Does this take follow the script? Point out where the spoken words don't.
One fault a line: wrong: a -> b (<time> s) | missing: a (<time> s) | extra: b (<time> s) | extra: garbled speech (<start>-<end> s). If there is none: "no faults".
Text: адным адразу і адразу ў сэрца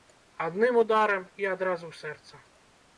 wrong: адразу -> ударам (0.8 s)